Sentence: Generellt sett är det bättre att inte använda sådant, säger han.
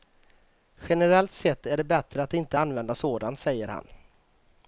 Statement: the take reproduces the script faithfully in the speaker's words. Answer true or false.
true